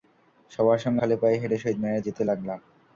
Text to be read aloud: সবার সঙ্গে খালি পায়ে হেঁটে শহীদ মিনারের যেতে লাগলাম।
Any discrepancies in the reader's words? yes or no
no